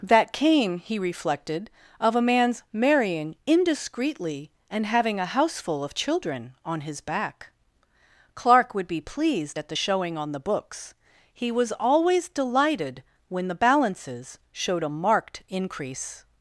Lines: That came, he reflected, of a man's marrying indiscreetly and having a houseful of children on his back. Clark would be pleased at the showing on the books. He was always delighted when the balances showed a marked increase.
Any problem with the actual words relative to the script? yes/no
no